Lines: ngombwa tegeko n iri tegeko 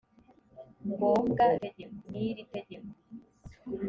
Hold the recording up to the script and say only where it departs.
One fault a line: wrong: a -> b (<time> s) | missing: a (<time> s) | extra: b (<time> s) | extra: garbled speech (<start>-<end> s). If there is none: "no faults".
no faults